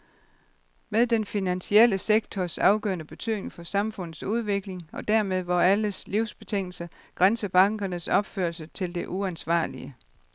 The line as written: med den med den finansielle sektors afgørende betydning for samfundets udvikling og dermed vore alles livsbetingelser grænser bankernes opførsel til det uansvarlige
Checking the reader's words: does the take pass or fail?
fail